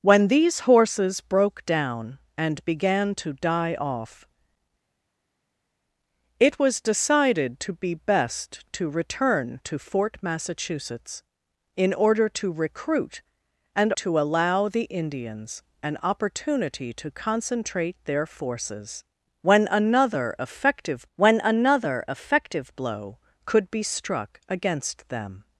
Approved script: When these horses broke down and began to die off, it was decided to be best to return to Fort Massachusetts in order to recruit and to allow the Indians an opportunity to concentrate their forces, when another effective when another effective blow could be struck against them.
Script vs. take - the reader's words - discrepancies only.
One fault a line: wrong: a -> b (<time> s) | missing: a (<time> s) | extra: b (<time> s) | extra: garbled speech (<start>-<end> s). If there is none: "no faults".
no faults